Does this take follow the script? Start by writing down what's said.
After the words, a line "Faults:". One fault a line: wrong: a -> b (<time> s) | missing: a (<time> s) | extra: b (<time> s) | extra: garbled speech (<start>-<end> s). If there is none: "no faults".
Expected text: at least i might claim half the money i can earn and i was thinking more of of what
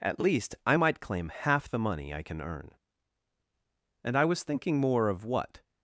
at least i might claim half the money i can earn and i was thinking more of what
Faults:
missing: of (5.3 s)